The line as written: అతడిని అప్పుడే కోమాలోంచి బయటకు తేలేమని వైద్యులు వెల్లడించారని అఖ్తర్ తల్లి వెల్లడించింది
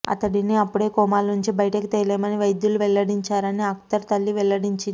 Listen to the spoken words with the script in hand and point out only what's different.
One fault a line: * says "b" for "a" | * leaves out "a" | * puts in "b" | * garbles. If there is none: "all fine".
all fine